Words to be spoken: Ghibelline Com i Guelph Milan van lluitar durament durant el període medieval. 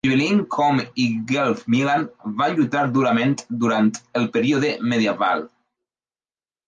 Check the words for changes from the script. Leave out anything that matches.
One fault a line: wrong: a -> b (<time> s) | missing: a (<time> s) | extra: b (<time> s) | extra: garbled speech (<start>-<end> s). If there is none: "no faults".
no faults